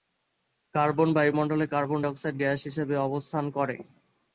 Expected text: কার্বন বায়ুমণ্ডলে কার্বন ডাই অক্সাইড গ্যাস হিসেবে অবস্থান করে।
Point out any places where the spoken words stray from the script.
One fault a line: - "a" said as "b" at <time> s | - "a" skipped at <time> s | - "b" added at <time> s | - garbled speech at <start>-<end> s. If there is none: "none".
- "ডাই" skipped at 2.0 s